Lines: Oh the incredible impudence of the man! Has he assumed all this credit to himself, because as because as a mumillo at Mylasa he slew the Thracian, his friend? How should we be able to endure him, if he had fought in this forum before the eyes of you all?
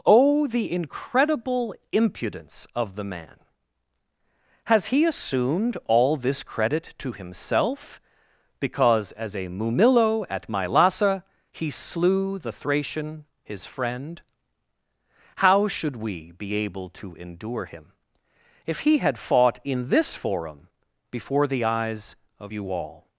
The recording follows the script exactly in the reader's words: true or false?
false